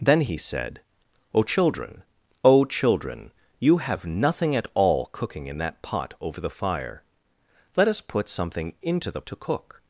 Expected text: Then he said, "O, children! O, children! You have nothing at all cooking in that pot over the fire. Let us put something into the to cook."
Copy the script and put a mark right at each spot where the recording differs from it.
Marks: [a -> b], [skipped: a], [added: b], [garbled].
Then he said, "O, children! O, children! You have nothing at all cooking in that pot over the fire. Let us put something into the to cook."